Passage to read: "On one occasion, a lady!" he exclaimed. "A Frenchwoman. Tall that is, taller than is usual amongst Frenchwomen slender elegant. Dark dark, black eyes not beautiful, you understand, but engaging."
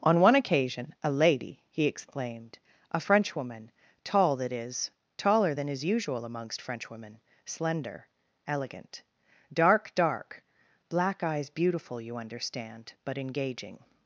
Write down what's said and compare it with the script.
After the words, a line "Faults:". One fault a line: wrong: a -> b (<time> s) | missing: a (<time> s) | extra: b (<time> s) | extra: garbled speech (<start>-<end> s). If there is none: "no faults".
"On one occasion, a lady!" he exclaimed. "A Frenchwoman. Tall that is, taller than is usual amongst Frenchwomen slender elegant. Dark dark, black eyes beautiful, you understand, but engaging."
Faults:
missing: not (11.5 s)